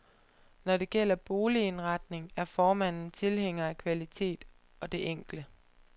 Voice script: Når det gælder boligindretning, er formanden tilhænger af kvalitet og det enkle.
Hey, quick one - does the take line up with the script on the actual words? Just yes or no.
yes